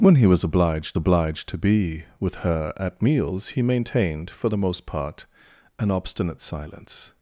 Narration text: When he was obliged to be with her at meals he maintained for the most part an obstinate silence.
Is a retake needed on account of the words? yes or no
yes